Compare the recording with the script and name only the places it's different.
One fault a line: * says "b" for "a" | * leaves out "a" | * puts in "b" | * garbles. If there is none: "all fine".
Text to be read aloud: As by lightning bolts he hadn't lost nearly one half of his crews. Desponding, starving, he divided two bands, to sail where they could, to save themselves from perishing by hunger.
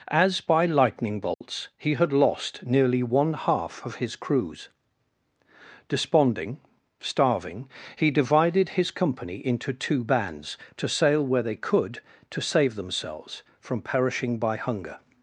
* says "had" for "hadn't"
* puts in "his company into"